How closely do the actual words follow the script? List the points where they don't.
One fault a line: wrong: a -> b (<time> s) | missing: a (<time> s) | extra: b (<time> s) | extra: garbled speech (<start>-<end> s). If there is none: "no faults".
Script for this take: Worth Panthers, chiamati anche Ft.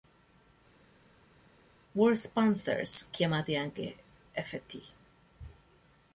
no faults